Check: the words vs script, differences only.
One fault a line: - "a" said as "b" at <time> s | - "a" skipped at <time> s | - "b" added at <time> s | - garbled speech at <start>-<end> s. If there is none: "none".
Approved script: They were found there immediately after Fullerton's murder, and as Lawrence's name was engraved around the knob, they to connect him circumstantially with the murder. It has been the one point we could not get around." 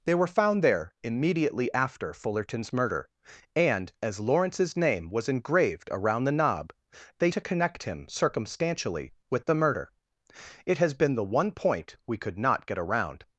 none